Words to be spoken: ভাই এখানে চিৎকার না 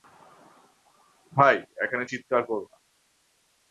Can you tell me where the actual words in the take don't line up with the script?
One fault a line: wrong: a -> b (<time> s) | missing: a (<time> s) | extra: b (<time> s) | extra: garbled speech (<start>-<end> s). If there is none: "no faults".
extra: করো (2.5 s)